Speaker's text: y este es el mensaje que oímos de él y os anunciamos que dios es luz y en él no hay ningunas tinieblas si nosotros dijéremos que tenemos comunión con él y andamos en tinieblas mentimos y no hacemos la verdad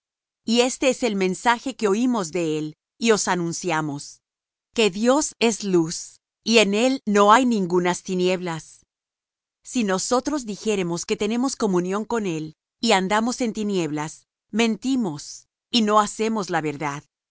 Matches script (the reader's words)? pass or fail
pass